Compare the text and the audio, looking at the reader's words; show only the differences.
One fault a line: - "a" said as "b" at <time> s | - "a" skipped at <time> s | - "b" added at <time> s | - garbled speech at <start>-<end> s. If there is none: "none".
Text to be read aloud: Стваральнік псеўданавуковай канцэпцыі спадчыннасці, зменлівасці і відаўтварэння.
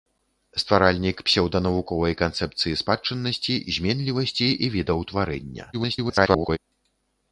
- garbled speech at 5.7-6.6 s